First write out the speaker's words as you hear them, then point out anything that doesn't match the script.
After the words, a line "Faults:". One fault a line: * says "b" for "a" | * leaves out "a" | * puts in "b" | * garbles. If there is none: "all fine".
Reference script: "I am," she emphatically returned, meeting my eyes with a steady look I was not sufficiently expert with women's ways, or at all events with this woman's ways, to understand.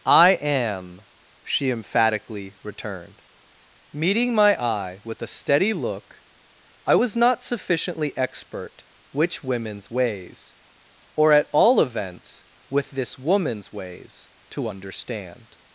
"I am," she emphatically returned, meeting my eye with a steady look I was not sufficiently expert which women's ways, or at all events with this woman's ways, to understand.
Faults:
* says "eye" for "eyes"
* says "which" for "with"